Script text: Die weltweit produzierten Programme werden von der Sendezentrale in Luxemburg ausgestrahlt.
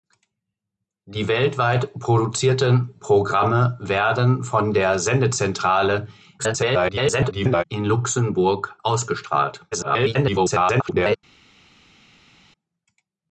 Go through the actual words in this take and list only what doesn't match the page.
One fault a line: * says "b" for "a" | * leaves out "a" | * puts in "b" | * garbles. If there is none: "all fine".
* garbles
* garbles